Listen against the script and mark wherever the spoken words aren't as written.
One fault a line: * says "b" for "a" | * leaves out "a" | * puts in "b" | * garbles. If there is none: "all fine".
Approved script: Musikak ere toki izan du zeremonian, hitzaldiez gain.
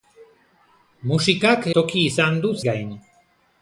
* leaves out "ere"
* leaves out "zeremonian hitzaldiez"